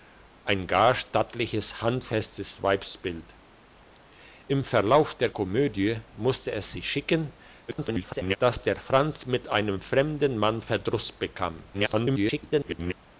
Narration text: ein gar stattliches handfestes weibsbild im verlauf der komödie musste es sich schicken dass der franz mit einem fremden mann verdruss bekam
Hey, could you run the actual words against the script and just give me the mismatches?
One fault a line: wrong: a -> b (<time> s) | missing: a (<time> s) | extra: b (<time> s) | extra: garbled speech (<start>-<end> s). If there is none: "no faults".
extra: garbled speech (7.7-8.4 s)
extra: garbled speech (11.7-12.9 s)